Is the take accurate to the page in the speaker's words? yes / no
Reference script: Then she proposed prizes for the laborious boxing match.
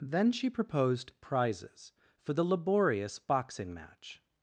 yes